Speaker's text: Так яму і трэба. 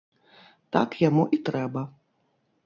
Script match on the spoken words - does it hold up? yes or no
yes